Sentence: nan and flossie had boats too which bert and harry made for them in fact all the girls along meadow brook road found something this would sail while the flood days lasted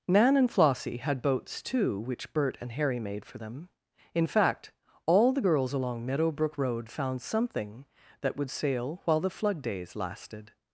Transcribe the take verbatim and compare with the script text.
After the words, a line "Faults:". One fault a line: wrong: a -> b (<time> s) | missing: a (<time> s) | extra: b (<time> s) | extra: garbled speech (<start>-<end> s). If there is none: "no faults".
nan and flossie had boats too which bert and harry made for them in fact all the girls along meadow brook road found something that would sail while the flood days lasted
Faults:
wrong: this -> that (8.2 s)